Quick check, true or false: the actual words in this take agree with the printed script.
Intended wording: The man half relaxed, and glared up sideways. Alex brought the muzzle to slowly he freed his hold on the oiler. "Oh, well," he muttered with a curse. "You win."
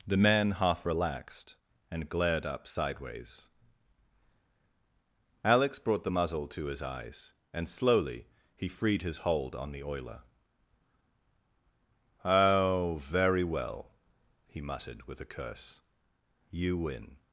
false